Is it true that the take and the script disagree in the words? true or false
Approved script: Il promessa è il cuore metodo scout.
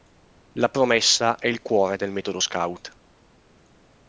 true